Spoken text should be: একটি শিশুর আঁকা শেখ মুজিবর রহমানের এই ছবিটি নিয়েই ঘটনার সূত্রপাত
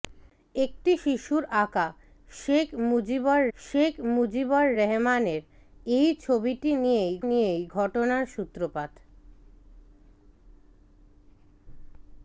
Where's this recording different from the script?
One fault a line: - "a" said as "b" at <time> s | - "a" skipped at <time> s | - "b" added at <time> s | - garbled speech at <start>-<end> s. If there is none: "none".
- "শেখ মুজিবর" added at 3.6 s
- "নিয়েই" added at 7.2 s